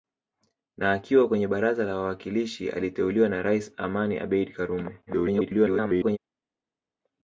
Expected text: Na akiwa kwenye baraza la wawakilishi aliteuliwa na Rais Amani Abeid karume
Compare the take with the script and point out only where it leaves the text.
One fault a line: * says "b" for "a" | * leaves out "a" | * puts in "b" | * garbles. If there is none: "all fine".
* garbles